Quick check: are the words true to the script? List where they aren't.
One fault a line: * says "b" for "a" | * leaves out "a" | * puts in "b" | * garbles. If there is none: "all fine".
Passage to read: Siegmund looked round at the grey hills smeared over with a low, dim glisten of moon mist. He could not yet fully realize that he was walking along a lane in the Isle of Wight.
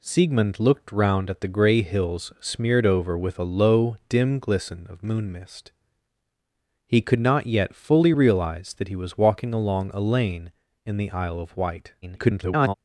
* garbles